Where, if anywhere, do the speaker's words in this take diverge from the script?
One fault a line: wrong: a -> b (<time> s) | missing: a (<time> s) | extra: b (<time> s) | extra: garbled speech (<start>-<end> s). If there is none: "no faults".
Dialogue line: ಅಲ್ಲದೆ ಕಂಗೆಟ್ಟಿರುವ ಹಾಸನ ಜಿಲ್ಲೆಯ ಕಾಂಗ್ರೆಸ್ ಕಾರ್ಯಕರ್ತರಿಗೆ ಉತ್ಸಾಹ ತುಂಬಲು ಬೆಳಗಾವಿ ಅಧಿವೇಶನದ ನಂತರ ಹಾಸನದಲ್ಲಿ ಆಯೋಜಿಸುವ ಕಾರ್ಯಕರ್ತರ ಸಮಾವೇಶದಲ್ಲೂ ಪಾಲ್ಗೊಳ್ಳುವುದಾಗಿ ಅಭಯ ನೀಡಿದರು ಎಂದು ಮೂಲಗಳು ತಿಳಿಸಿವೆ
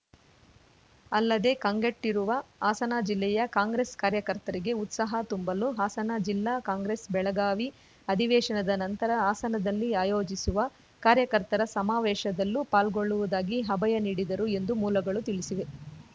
extra: ಹಾಸನ ಜಿಲ್ಲಾ ಕಾಂಗ್ರೆಸ್ (5.8 s)